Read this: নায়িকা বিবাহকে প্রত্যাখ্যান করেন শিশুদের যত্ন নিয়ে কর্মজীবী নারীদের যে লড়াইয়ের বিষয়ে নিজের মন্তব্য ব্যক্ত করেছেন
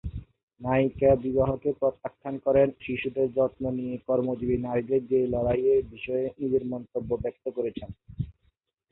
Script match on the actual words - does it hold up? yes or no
yes